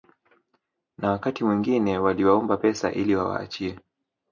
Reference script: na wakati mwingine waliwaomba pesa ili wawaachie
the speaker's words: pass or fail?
pass